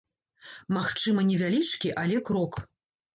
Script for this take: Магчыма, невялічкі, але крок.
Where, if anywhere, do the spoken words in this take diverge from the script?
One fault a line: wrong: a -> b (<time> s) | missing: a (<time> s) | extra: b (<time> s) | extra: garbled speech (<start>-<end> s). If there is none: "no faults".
no faults